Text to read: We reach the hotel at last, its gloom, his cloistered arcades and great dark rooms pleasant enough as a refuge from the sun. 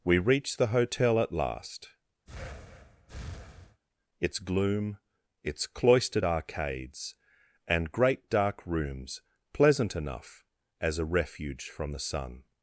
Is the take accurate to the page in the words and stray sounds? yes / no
no